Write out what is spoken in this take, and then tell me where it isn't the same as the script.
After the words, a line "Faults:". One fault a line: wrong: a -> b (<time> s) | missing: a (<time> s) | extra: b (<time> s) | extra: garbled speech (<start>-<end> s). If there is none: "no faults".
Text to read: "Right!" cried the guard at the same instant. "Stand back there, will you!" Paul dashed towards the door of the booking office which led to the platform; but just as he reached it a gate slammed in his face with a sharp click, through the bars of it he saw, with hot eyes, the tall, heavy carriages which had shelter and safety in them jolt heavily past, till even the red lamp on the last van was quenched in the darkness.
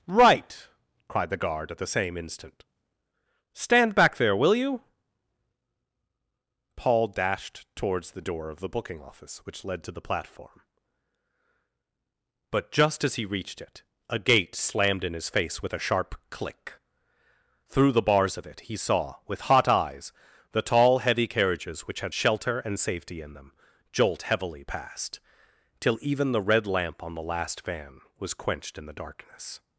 "Right!" cried the guard at the same instant. "Stand back there, will you!" Paul dashed towards the door of the booking office which led to the platform; but just as he reached it a gate slammed in his face with a sharp click, through the bars of it he saw, with hot eyes, the tall, heavy carriages which had shelter and safety in them jolt heavily past, till even the red lamp on the last van was quenched in the darkness.
Faults:
no faults